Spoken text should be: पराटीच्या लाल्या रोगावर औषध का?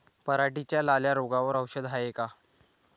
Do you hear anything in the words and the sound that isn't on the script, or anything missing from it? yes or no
yes